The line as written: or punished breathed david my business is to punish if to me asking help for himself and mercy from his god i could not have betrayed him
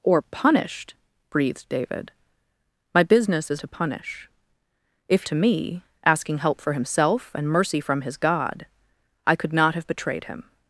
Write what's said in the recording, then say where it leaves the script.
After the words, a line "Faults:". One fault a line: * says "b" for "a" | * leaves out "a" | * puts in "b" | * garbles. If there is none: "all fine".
or punished breathed david my business is to punish if to me asking help for himself and mercy from his god i could not have betrayed him
Faults:
all fine